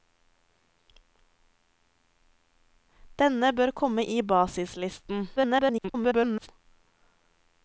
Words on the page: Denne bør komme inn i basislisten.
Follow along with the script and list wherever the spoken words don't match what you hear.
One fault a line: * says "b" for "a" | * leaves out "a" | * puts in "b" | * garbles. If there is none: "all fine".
* leaves out "inn"
* garbles